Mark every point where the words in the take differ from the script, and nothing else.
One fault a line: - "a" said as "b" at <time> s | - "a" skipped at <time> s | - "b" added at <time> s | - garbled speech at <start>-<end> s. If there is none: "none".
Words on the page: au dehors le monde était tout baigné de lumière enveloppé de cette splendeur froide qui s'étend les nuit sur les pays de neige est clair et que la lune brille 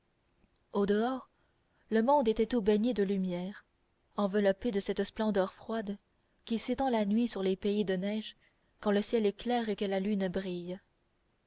- "les" said as "la" at 6.9 s
- "quand le ciel" added at 8.8 s